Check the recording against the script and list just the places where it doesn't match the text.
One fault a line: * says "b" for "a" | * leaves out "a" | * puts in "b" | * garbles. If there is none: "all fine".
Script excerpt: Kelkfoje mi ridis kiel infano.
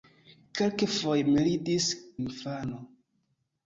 * leaves out "kiel"